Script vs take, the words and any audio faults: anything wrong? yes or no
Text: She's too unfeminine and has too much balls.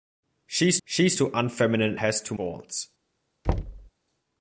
yes